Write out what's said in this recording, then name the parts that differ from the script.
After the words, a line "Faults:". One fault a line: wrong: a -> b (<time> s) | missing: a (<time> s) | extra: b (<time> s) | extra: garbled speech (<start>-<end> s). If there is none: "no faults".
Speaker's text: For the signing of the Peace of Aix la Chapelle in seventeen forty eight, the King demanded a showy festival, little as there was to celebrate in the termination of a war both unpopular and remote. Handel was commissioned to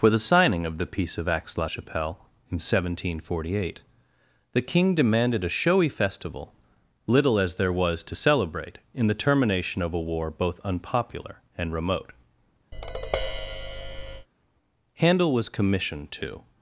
For the signing of the Peace of Aix la Chapelle in seventeen forty eight, the King demanded a showy festival, little as there was to celebrate in the termination of a war both unpopular and remote. Handel was commissioned to
Faults:
no faults